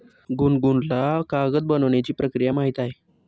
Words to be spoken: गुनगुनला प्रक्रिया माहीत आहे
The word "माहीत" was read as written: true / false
true